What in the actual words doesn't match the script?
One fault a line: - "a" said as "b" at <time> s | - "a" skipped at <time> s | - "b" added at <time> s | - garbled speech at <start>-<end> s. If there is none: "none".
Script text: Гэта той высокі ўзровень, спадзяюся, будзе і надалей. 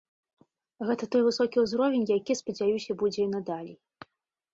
- "які" added at 2.2 s